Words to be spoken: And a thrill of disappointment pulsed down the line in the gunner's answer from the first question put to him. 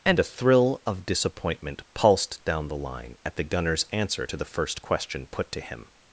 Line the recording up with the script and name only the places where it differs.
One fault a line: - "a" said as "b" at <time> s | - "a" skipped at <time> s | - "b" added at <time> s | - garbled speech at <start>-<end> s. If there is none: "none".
- "in" said as "at" at 3.2 s
- "from" said as "to" at 4.2 s